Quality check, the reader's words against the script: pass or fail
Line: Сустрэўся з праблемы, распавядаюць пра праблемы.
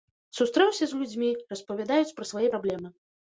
fail